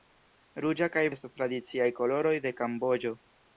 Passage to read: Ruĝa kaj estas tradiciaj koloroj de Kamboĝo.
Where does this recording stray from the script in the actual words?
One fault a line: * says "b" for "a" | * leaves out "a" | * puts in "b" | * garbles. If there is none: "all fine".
all fine